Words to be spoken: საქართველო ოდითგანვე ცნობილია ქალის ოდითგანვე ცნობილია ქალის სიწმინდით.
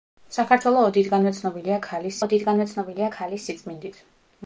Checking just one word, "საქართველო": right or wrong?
right